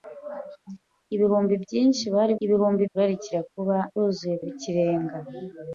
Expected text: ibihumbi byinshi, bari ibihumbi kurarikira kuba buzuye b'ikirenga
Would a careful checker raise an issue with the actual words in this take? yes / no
no